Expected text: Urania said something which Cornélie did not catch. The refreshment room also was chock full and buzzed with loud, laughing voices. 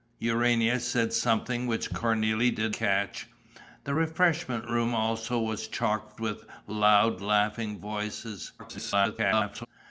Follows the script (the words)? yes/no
no